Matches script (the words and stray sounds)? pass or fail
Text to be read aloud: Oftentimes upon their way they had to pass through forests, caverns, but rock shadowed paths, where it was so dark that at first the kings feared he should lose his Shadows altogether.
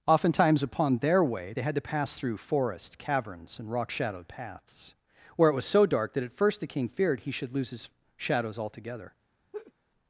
fail